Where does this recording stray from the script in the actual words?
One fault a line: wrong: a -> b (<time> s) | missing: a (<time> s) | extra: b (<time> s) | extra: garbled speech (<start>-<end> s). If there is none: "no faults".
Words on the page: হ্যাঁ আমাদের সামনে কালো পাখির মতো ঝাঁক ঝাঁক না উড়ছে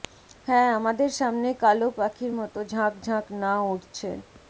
no faults